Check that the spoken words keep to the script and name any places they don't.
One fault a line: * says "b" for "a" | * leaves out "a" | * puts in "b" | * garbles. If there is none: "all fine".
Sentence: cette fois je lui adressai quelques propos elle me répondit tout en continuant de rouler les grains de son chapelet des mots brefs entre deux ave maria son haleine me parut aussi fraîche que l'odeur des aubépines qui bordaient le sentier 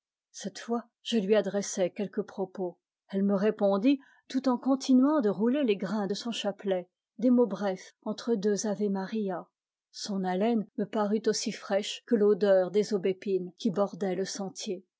all fine